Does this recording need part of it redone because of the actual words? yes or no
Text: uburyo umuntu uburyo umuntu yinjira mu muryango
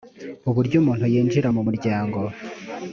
yes